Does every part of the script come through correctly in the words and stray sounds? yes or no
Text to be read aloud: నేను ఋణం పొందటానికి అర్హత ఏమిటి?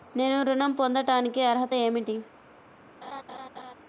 no